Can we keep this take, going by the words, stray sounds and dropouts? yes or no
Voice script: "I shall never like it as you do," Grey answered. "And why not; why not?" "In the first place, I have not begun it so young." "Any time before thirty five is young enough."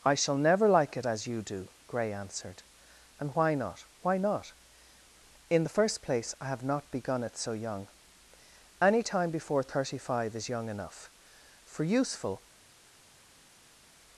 no